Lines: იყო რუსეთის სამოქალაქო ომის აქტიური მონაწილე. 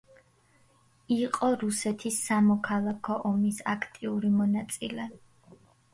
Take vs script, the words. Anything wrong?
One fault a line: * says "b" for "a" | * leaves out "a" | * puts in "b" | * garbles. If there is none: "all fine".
all fine